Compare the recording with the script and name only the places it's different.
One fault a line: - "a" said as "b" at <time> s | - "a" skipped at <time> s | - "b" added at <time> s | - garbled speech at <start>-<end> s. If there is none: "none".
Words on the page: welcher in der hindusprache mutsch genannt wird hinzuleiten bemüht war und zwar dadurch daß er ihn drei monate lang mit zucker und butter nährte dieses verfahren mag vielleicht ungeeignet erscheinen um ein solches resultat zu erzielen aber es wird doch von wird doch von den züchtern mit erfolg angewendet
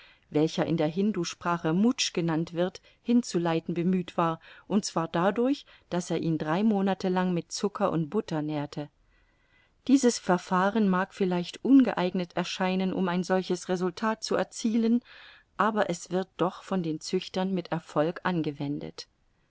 - "wird doch von" skipped at 16.8 s